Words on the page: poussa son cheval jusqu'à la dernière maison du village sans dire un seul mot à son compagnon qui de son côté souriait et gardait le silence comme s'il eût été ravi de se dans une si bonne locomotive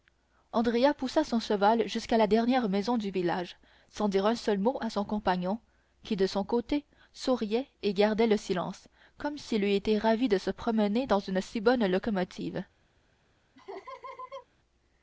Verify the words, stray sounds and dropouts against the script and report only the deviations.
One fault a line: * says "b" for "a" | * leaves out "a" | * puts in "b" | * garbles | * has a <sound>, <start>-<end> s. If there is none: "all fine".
* puts in "promener"
* has a laugh, 13.6-14.5 s